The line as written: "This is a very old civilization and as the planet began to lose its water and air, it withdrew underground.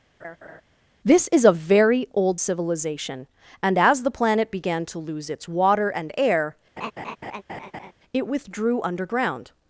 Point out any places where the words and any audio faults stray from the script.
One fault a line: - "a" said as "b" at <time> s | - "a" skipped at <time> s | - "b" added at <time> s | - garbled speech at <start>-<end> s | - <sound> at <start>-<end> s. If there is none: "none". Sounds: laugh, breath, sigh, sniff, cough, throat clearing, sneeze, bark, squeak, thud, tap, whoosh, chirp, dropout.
- laugh at 0.2-0.6 s
- laugh at 6.8-7.9 s